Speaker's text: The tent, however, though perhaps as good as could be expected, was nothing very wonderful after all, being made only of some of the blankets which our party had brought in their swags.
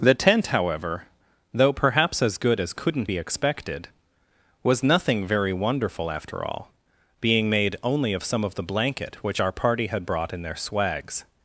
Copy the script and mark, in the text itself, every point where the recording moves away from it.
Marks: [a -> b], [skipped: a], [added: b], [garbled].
The tent, however, though perhaps as good as [could -> couldn't] be expected, was nothing very wonderful after all, being made only of some of the [blankets -> blanket] which our party had brought in their swags.